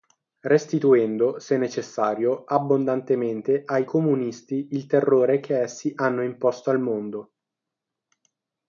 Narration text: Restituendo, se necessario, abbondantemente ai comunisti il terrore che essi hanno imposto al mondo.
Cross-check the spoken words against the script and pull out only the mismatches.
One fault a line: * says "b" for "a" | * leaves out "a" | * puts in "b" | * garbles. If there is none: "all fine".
all fine